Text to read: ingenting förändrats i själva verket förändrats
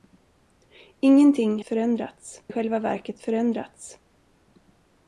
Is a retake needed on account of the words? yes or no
no